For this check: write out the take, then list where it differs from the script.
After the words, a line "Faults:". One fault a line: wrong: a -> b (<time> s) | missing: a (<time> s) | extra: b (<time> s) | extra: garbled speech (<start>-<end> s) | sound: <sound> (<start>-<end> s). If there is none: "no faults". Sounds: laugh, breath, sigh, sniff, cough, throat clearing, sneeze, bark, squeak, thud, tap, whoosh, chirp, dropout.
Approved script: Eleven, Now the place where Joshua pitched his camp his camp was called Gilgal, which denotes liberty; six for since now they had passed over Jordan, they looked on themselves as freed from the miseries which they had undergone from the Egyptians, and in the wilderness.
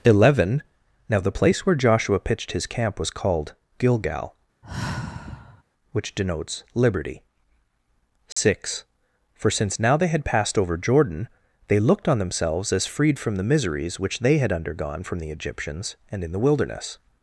Eleven, Now the place where Joshua pitched his camp was called Gilgal, which denotes liberty; six for since now they had passed over Jordan, they looked on themselves as freed from the miseries which they had undergone from the Egyptians, and in the wilderness.
Faults:
missing: his camp (3.0 s)
sound: sigh (4.6-5.6 s)
sound: dropout (8.3-8.4 s)